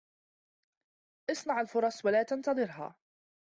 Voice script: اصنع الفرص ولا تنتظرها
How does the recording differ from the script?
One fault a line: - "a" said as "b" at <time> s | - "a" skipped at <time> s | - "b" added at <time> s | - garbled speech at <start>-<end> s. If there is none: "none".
none